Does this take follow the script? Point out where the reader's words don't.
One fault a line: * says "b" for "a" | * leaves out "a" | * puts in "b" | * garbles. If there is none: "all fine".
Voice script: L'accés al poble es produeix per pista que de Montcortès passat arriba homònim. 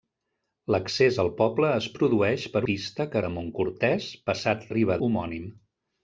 all fine